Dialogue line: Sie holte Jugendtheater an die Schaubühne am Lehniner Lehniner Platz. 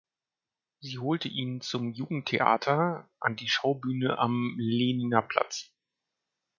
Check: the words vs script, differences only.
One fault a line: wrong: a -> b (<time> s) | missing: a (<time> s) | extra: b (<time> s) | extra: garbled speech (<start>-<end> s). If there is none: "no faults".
extra: ihn zum (1.3 s)
missing: Lehniner (5.2 s)